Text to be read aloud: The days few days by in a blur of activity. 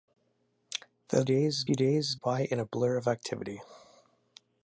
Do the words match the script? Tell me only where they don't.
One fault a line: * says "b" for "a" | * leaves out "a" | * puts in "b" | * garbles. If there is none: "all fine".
all fine